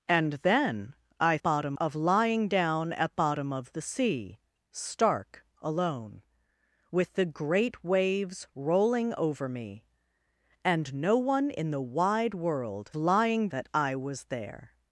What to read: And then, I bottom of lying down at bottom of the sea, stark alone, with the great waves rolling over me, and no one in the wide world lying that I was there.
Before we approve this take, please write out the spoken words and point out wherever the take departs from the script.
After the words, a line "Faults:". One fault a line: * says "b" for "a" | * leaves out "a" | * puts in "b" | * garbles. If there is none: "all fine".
And then, I bottom of lying down at bottom of the sea, stark alone, with the great waves rolling over me, and no one in the wide world lying that I was there.
Faults:
all fine